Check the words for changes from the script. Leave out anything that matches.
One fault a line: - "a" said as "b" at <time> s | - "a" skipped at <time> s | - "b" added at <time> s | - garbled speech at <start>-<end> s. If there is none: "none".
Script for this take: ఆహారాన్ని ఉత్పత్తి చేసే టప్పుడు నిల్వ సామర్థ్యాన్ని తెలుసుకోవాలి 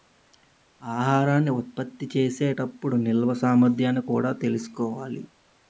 - "కూడా" added at 4.0 s